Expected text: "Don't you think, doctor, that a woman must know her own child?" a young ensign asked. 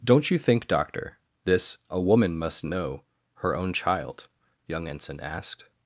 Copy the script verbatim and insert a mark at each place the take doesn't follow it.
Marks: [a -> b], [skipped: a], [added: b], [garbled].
"Don't you think, doctor, [that -> this] a woman must know her own child?" [skipped: a] young ensign asked.